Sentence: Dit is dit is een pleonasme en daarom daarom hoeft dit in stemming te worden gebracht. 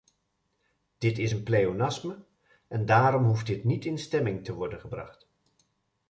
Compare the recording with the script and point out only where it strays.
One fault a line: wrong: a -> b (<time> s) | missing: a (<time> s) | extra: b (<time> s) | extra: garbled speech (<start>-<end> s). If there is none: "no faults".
missing: dit is (1.3 s)
missing: daarom (3.2 s)
extra: niet (3.6 s)